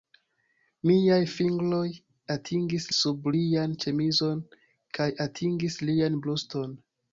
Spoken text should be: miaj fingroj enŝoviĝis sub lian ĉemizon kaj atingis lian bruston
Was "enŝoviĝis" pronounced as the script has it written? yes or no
no